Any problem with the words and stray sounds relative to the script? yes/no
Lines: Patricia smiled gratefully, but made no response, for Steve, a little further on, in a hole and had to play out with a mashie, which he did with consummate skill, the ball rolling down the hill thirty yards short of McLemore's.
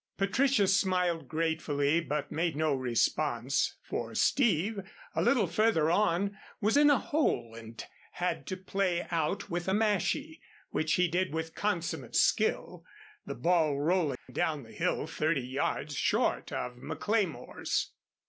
yes